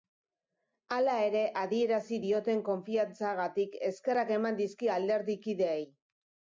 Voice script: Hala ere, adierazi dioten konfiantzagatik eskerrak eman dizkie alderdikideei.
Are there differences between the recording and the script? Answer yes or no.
no